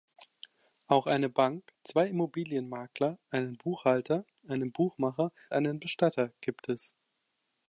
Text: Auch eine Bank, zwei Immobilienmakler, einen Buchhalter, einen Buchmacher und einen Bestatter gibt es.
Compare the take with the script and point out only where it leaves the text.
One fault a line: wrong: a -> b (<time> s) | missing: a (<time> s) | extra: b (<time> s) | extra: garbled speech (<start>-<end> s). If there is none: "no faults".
missing: und (5.3 s)